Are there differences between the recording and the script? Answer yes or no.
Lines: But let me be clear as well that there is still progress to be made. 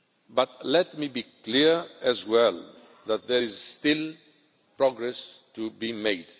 no